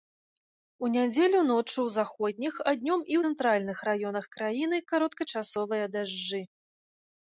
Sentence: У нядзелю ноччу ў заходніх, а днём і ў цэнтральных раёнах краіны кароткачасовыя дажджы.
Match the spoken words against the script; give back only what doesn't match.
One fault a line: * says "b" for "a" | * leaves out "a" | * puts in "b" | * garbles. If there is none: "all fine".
* leaves out "ў"